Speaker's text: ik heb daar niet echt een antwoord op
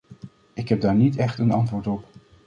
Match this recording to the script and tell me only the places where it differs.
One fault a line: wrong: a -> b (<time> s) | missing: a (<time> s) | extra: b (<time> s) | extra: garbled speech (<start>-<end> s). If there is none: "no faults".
no faults